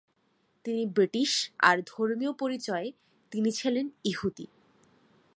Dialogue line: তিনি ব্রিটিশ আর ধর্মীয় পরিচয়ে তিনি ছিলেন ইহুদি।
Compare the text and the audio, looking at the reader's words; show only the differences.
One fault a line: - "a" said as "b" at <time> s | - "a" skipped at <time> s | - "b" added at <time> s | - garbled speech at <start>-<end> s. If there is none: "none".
none